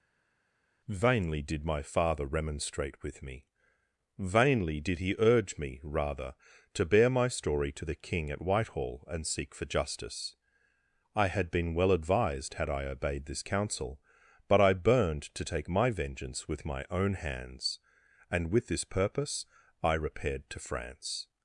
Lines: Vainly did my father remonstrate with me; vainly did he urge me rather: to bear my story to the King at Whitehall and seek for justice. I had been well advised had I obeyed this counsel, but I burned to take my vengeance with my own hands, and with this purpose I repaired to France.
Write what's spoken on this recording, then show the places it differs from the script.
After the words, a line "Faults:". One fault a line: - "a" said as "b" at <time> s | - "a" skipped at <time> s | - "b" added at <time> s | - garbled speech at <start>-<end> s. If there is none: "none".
Vainly did my father remonstrate with me; vainly did he urge me rather: to bear my story to the King at Whitehall and seek for justice. I had been well advised had I obeyed this counsel, but I burned to take my vengeance with my own hands, and with this purpose I repaired to France.
Faults:
none